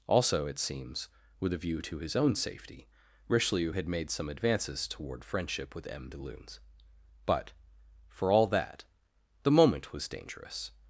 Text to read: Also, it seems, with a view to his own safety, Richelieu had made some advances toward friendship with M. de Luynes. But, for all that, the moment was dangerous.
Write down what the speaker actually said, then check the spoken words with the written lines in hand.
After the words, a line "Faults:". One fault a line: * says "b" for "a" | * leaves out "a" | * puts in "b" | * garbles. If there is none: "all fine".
Also, it seems, with a view to his own safety, Richelieu had made some advances toward friendship with M. de Luynes. But, for all that, the moment was dangerous.
Faults:
all fine